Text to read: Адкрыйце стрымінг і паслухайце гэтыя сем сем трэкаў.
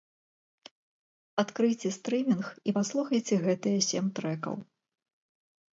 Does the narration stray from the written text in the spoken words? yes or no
yes